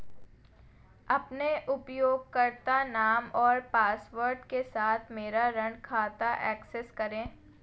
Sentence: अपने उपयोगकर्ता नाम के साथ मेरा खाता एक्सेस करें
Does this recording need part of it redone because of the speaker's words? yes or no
yes